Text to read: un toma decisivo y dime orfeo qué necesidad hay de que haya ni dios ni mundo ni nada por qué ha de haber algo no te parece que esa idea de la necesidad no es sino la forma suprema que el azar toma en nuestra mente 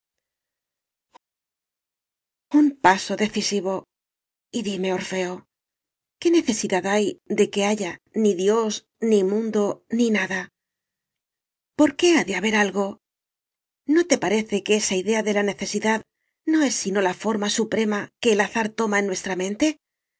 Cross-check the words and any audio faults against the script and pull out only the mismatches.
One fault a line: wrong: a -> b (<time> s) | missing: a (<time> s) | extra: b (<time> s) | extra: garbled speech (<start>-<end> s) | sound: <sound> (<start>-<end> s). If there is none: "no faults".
wrong: toma -> paso (2.9 s)